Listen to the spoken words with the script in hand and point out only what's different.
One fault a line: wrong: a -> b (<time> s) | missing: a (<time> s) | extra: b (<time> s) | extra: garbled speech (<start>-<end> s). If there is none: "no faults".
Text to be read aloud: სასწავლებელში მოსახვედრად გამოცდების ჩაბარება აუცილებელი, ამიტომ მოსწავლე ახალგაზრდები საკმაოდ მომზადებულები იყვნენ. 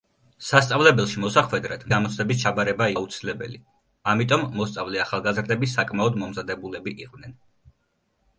no faults